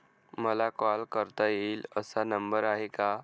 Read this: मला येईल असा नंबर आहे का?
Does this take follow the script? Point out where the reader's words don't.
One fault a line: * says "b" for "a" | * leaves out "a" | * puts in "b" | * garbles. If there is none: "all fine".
* puts in "कॉल करता"